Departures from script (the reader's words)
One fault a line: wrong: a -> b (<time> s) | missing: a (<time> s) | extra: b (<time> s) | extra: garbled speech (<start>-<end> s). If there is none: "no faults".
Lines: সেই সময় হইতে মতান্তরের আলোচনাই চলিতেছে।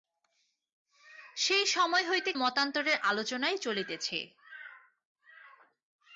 no faults